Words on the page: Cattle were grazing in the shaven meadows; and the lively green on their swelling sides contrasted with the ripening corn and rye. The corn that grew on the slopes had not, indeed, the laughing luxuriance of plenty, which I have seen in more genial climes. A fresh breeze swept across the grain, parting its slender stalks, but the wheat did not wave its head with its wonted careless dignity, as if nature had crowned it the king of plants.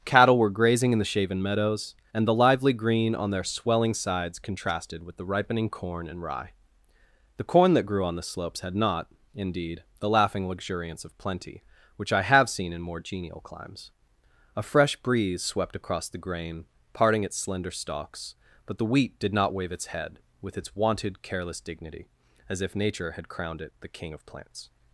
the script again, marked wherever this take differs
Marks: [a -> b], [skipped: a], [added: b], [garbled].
Cattle were grazing in the shaven meadows; and the lively green on their swelling sides contrasted with the ripening corn and rye. The corn that grew on the slopes had not, indeed, the laughing luxuriance of plenty, which I have seen in more genial climes. A fresh breeze swept across the grain, parting its slender stalks, but the wheat did not wave its head with its wonted careless dignity, as if nature had crowned it the king of plants.